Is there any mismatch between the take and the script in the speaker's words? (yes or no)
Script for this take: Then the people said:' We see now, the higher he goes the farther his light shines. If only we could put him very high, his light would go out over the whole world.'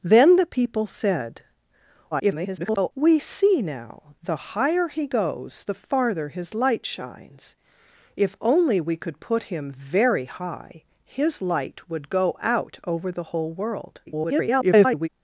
yes